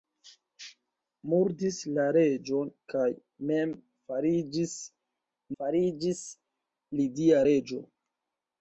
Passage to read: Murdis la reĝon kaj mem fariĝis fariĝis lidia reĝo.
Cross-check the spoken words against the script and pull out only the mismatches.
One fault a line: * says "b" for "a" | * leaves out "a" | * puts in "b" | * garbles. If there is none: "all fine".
all fine